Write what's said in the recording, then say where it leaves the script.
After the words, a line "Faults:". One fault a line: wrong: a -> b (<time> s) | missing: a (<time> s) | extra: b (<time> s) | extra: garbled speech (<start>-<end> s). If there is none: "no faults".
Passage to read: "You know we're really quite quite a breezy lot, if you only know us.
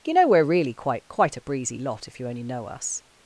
"You know we're really quite quite a breezy lot, if you only know us.
Faults:
no faults